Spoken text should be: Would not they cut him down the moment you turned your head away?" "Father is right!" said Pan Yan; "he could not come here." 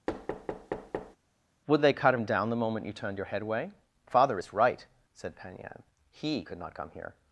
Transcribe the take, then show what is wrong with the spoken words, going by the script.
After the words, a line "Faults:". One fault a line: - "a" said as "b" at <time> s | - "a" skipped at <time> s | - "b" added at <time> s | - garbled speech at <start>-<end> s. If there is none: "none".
Would they cut him down the moment you turned your head away?" "Father is right!" said Pan Yan; "he could not come here."
Faults:
- "not" skipped at 1.8 s